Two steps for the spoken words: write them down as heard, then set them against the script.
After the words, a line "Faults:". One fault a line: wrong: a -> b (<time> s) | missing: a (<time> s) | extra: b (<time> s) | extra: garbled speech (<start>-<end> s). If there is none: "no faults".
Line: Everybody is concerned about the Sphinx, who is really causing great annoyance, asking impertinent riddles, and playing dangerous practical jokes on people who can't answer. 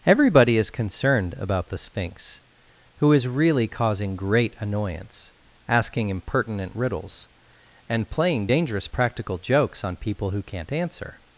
Everybody is concerned about the Sphinx, who is really causing great annoyance, asking impertinent riddles, and playing dangerous practical jokes on people who can't answer.
Faults:
no faults